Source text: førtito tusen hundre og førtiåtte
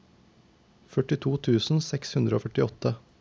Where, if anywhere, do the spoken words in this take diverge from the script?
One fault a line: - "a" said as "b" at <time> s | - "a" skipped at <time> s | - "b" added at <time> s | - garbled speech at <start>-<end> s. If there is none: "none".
- "seks" added at 1.9 s